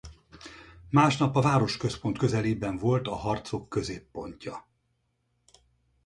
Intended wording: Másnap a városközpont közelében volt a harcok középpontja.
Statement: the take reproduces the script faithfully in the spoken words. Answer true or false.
true